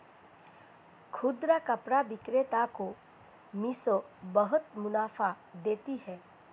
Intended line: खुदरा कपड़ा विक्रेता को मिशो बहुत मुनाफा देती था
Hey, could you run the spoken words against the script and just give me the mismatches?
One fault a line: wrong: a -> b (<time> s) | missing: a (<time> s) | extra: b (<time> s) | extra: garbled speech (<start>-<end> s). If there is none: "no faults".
wrong: था -> है (6.0 s)